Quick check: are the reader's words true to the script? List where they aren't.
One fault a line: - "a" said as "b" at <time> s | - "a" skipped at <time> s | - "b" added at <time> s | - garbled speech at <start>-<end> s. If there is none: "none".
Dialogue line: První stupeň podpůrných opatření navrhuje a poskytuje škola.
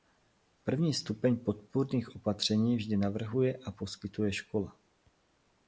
- "vždy" added at 2.8 s